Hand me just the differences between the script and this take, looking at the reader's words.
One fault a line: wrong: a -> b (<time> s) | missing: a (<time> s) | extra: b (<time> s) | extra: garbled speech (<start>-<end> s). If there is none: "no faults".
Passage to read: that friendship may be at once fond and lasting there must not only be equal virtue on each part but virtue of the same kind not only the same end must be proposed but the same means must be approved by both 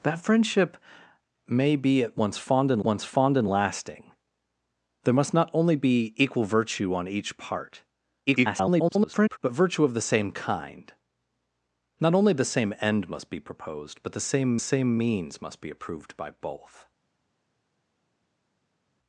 extra: once fond and (2.8 s)
extra: garbled speech (8.3-9.4 s)
extra: same (14.6 s)